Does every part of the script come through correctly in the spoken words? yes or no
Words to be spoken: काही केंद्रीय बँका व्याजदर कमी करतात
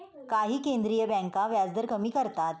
yes